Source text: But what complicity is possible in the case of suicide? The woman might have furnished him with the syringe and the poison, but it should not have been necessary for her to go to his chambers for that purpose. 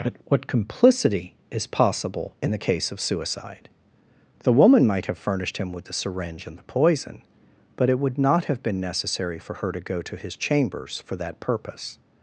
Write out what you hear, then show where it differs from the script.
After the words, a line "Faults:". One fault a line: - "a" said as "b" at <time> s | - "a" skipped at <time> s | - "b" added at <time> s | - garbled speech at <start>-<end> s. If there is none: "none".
But what complicity is possible in the case of suicide? The woman might have furnished him with the syringe and the poison, but it would not have been necessary for her to go to his chambers for that purpose.
Faults:
- "should" said as "would" at 8.0 s